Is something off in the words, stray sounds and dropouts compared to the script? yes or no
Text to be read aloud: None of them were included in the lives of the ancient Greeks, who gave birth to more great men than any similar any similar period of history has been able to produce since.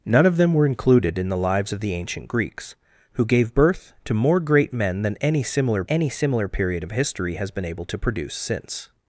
no